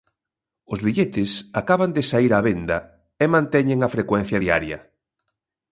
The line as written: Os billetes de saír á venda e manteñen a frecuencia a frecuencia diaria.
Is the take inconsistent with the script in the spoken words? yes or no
yes